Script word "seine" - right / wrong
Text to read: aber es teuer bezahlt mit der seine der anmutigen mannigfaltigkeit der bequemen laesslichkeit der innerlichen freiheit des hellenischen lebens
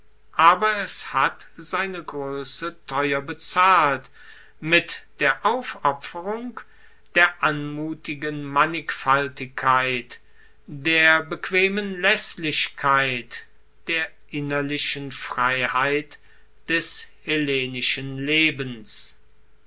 wrong